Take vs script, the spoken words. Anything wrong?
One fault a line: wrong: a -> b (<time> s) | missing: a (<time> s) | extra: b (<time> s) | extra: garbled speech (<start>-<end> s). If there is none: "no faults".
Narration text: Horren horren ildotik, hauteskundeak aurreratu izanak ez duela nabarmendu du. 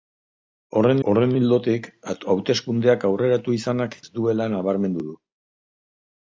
no faults